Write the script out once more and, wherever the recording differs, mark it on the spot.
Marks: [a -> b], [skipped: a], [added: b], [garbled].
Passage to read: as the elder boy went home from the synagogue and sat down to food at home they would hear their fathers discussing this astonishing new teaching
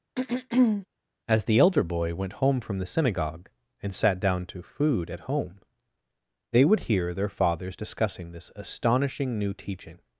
as the elder boy went home from the synagogue and sat down to food at home they would hear their fathers discussing this astonishing new teaching